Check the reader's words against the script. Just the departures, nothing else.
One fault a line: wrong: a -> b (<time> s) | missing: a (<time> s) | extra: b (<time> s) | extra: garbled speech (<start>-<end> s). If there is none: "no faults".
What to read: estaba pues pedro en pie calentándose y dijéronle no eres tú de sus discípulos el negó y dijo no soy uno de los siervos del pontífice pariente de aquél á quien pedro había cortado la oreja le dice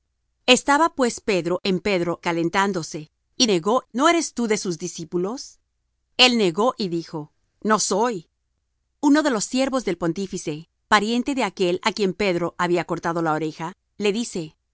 wrong: pie -> pedro (1.8 s)
wrong: dijéronle -> negó (3.5 s)